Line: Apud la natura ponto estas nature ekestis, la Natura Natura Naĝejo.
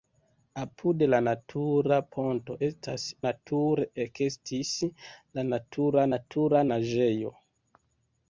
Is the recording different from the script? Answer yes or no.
no